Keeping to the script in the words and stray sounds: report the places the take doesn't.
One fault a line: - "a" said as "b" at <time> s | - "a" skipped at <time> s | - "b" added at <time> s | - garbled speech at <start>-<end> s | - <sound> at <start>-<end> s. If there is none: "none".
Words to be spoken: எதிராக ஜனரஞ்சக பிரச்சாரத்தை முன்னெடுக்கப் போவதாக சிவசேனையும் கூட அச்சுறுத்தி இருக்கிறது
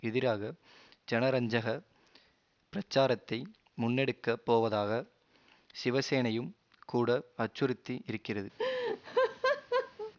- laugh at 8.6-10.1 s